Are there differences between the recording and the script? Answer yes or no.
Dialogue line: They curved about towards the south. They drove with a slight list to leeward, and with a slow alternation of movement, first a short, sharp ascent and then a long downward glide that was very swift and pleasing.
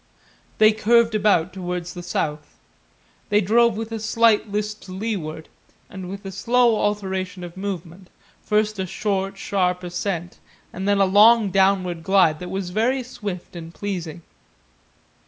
no